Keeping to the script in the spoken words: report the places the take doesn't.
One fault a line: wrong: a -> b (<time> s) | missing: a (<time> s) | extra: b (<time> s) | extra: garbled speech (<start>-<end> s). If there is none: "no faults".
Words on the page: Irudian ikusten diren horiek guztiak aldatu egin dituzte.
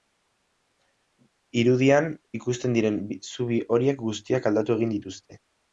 extra: zubi (3.3 s)